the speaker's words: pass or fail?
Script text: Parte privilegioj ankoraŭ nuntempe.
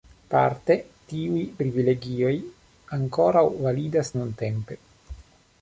fail